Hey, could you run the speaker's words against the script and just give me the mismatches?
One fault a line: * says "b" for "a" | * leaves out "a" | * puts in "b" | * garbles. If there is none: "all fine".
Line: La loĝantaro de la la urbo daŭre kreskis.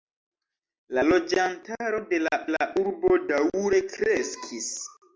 all fine